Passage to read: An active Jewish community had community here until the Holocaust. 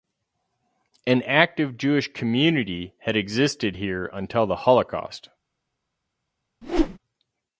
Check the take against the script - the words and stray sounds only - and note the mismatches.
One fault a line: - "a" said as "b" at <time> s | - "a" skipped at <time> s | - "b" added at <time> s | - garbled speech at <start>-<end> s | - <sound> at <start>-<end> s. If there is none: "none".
- "community" said as "existed" at 3.1 s
- whoosh at 6.6-7.0 s